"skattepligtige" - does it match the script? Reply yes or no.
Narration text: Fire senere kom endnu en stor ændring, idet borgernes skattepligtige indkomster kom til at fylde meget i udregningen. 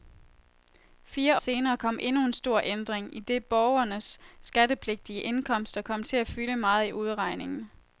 yes